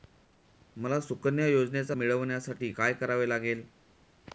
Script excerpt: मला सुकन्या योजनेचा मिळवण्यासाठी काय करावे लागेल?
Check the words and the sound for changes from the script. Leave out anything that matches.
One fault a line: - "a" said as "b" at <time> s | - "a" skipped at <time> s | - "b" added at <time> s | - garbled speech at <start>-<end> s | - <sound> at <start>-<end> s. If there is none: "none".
none